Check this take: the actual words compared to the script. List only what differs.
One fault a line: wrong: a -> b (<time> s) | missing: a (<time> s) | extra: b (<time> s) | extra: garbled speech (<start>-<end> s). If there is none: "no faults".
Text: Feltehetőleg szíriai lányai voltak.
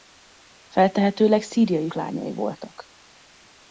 no faults